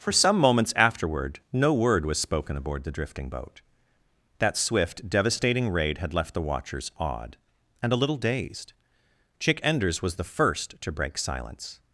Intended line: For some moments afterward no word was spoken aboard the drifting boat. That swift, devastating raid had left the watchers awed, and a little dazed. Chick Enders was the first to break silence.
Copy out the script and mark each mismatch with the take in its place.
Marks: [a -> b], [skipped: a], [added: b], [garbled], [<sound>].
For some moments afterward no word was spoken aboard the drifting boat. That swift, devastating raid had left the watchers awed, and a little dazed. Chick Enders was the first to break silence.